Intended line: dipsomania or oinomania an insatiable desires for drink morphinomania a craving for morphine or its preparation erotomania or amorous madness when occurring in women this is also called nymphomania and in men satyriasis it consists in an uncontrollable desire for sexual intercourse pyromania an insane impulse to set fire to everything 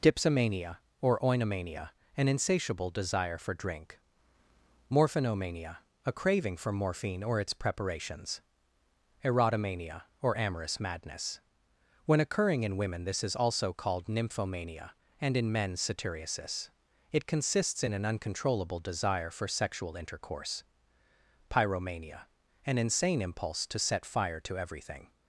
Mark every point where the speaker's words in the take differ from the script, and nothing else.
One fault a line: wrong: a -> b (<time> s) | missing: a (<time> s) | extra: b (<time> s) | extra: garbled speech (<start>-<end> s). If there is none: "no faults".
wrong: desires -> desire (2.9 s)
wrong: preparation -> preparations (7.5 s)